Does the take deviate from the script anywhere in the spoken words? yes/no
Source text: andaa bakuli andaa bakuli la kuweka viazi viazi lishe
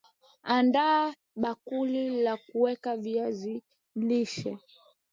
yes